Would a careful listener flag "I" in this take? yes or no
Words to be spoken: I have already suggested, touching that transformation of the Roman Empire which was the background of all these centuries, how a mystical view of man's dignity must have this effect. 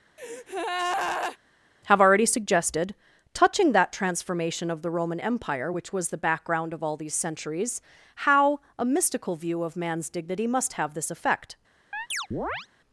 yes